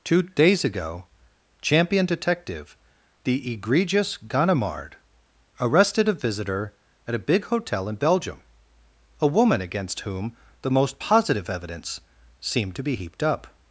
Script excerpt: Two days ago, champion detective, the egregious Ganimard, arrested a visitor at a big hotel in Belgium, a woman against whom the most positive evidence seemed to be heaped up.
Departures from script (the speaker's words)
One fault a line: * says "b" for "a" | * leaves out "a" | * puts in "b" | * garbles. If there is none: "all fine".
all fine